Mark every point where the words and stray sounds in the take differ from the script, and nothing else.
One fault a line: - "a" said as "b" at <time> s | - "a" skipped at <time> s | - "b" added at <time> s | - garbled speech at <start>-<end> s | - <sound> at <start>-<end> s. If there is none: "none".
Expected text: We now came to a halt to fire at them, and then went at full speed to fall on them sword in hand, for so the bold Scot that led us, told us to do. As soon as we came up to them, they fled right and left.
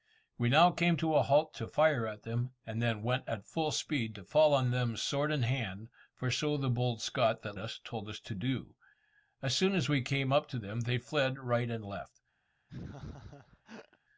- "led" skipped at 7.6 s
- laugh at 12.7-14.0 s